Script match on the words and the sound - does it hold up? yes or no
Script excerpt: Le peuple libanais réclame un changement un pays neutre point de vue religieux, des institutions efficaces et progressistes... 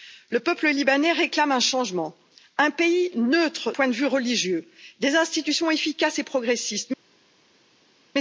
yes